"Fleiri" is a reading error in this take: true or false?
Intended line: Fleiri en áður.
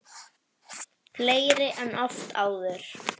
false